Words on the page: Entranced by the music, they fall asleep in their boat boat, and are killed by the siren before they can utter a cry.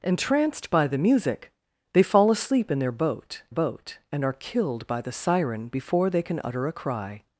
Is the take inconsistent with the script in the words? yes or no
no